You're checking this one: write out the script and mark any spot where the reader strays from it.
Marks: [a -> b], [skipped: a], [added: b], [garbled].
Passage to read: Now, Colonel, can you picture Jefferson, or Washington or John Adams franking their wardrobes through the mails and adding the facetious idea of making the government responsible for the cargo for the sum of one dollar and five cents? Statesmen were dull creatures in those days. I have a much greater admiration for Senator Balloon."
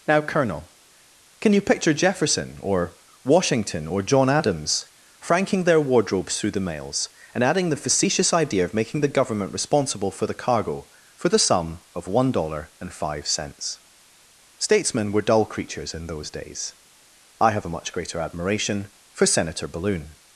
Now, Colonel, can you picture Jefferson, or Washington or John Adams franking their wardrobes through the mails and adding the facetious idea of making the government responsible for the cargo for the sum of one dollar and five cents? Statesmen were dull creatures in those days. I have a much greater admiration for Senator Balloon."